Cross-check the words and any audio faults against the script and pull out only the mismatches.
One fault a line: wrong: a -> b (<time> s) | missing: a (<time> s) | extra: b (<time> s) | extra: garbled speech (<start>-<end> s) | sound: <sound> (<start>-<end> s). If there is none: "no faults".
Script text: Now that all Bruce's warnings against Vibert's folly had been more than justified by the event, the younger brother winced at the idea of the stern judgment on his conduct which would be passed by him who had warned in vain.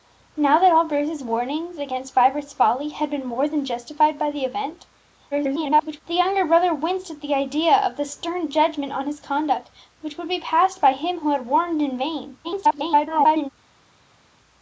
extra: garbled speech (5.3-6.0 s)
extra: garbled speech (12.4-13.5 s)